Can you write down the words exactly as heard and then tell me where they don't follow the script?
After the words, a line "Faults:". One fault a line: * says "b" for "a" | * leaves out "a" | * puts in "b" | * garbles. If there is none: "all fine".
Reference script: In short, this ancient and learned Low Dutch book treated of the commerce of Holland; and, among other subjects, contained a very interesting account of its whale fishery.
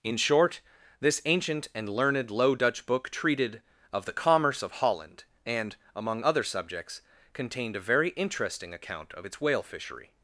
In short, this ancient and learned Low Dutch book treated of the commerce of Holland; and, among other subjects, contained a very interesting account of its whale fishery.
Faults:
all fine